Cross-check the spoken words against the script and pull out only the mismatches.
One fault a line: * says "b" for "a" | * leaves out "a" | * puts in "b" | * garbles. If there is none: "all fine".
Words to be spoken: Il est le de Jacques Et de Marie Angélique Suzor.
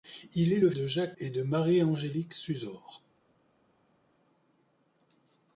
all fine